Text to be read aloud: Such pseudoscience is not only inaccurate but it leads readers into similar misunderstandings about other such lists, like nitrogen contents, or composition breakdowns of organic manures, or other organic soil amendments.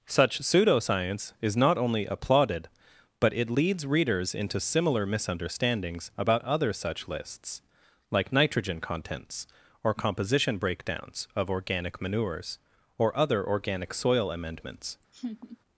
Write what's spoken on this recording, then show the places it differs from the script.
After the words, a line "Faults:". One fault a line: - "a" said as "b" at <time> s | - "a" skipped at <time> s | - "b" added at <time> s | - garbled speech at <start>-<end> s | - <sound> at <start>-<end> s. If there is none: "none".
Such pseudoscience is not only applauded but it leads readers into similar misunderstandings about other such lists, like nitrogen contents, or composition breakdowns of organic manures, or other organic soil amendments.
Faults:
- "inaccurate" said as "applauded" at 2.0 s
- laugh at 15.1-15.6 s